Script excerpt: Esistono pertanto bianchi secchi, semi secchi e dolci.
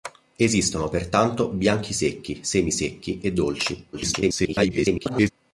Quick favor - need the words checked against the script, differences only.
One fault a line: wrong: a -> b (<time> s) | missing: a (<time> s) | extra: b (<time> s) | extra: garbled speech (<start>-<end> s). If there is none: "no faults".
extra: garbled speech (3.9-5.3 s)